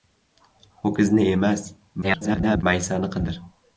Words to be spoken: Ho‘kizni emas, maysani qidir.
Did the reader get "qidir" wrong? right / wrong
right